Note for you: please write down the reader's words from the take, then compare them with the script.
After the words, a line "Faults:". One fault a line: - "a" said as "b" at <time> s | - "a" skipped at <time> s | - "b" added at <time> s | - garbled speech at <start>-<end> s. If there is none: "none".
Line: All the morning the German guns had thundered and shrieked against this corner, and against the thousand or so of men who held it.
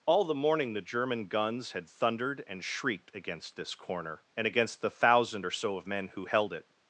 All the morning the German guns had thundered and shrieked against this corner, and against the thousand or so of men who held it.
Faults:
none